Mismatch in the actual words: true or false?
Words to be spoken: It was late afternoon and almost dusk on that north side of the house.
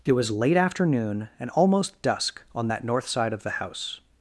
false